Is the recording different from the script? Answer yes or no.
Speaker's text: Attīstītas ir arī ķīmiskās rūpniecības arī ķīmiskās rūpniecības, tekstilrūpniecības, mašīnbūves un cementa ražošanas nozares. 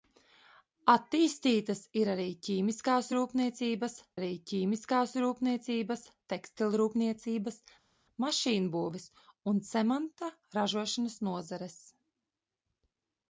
no